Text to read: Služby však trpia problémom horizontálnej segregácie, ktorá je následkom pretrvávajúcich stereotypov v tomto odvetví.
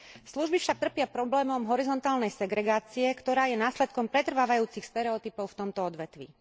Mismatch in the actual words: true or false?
false